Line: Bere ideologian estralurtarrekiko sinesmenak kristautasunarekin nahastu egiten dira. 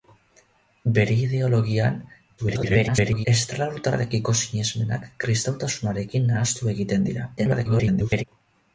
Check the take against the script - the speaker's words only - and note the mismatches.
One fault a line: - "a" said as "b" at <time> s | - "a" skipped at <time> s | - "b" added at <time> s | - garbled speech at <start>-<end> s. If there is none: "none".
- garbled speech at 2.4-3.3 s
- garbled speech at 7.4-8.2 s